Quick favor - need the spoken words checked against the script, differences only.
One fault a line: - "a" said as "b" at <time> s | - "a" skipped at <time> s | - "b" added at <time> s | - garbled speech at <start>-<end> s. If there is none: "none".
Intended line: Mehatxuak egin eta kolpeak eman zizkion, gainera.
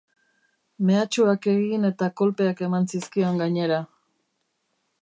none